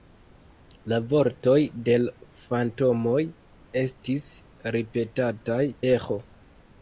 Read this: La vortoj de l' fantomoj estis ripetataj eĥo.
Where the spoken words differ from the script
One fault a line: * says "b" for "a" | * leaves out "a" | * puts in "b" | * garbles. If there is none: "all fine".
all fine